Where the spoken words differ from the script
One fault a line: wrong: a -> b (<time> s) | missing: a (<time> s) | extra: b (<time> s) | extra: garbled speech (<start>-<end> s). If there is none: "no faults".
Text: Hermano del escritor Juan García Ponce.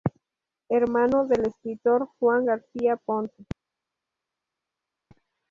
no faults